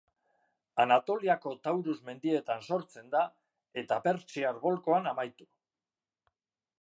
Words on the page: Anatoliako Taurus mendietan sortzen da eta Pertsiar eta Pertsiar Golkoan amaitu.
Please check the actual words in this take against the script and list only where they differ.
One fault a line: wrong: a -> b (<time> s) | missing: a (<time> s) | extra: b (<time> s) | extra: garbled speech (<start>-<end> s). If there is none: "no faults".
missing: eta Pertsiar (4.6 s)